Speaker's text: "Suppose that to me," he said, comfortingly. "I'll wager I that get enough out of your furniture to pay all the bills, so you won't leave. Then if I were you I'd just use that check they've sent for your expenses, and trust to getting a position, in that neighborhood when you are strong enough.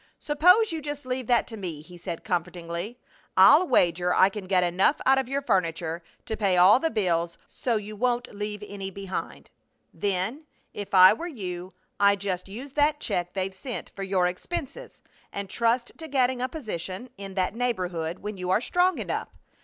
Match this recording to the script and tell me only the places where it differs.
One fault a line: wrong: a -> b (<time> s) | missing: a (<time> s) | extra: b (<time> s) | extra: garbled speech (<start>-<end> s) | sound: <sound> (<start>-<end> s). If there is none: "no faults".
extra: you just leave (0.7 s)
wrong: that -> can (4.3 s)
extra: any behind (8.7 s)